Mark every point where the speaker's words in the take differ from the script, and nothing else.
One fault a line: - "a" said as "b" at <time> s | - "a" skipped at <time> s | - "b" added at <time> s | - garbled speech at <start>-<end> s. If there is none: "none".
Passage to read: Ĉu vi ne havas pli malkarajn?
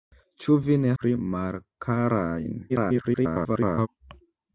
- "havas" skipped at 0.9 s
- garbled speech at 2.7-3.9 s